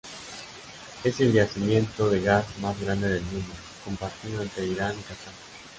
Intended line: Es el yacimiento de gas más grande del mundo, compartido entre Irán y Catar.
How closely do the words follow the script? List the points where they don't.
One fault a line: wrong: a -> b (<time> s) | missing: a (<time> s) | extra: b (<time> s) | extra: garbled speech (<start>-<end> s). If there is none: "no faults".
no faults